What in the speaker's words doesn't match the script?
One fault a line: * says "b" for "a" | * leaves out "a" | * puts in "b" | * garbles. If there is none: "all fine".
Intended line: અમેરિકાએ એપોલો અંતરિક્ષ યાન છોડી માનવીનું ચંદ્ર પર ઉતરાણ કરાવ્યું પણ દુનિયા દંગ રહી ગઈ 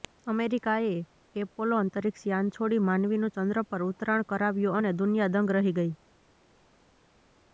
* says "અને" for "પણ"